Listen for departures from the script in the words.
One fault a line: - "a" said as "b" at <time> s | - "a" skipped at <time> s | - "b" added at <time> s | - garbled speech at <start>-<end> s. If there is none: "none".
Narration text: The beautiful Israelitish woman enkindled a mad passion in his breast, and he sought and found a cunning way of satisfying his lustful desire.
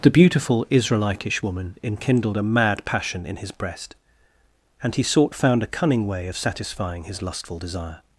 - "and" skipped at 5.4 s